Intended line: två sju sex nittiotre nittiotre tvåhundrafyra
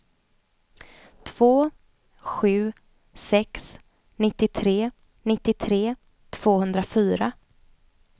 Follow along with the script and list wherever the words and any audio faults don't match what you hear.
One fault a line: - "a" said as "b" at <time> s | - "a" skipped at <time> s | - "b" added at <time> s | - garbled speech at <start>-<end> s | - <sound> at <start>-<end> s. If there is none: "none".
none